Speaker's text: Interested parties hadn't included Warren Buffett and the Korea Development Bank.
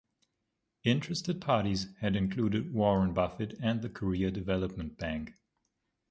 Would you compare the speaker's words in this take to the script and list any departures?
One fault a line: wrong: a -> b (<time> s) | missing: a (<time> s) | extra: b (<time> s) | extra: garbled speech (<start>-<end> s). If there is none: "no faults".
wrong: hadn't -> had (2.0 s)